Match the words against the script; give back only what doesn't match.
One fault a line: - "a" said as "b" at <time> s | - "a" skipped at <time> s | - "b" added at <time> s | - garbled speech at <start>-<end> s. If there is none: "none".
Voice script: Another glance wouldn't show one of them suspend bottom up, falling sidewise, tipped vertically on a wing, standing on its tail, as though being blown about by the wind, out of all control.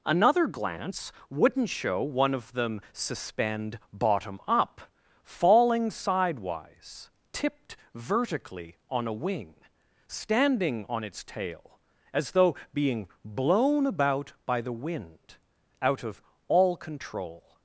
none